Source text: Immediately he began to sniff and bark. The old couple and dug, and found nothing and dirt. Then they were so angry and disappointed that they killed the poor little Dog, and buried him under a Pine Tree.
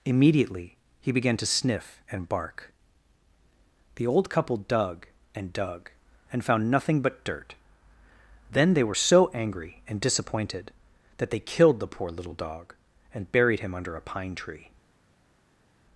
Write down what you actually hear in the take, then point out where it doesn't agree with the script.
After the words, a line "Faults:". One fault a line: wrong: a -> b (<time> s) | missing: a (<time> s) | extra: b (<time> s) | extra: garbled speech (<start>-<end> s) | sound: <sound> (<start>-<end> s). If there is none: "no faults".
Immediately he began to sniff and bark. The old couple dug and dug, and found nothing but dirt. Then they were so angry and disappointed that they killed the poor little Dog, and buried him under a Pine Tree.
Faults:
extra: dug (4.6 s)
wrong: and -> but (7.0 s)